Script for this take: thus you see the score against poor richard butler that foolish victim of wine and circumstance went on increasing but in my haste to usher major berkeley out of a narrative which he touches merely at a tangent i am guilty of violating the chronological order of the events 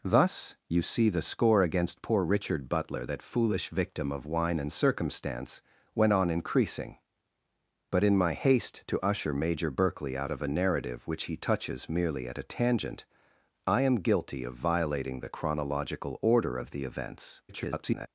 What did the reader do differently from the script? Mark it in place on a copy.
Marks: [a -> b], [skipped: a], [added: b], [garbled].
thus you see the score against poor richard butler that foolish victim of wine and circumstance went on increasing but in my haste to usher major berkeley out of a narrative which he touches merely at a tangent i am guilty of violating the chronological order of the events [garbled]